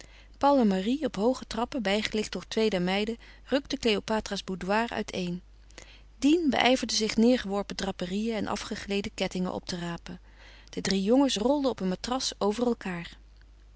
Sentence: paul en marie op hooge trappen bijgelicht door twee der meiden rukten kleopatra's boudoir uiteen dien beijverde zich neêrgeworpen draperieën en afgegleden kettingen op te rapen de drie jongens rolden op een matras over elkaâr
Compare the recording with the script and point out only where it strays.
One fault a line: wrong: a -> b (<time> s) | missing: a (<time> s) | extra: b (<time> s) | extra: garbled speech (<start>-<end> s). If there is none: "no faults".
no faults